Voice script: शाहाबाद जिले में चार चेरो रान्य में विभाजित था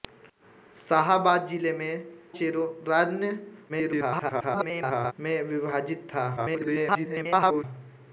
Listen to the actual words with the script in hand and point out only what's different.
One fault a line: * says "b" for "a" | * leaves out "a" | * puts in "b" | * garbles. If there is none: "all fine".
* leaves out "चार"
* garbles
* garbles